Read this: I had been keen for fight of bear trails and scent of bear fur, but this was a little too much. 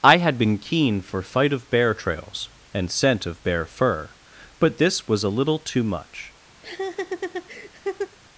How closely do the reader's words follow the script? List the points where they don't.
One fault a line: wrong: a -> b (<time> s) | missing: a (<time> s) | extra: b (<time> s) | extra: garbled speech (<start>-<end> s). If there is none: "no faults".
no faults